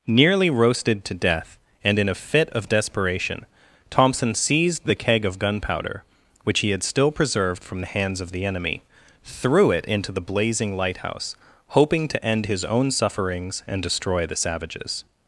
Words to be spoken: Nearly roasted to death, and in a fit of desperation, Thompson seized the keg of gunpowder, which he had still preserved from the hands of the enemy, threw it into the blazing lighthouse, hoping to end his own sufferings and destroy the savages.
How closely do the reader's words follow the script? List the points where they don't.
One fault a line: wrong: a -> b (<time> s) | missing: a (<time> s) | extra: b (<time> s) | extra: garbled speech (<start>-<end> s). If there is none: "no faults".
no faults